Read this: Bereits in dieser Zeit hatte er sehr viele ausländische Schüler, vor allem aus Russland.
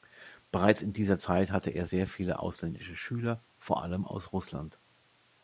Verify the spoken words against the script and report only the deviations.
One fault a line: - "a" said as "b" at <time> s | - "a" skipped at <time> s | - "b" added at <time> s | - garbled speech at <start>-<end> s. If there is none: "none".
none